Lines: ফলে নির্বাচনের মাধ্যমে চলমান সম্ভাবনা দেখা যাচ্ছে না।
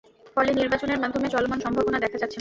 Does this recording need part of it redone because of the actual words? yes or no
no